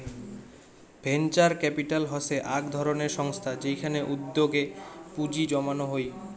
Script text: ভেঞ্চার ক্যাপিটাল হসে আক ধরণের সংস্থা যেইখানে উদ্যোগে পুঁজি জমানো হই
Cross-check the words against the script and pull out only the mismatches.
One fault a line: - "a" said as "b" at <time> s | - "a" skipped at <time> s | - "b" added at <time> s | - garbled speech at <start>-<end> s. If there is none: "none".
none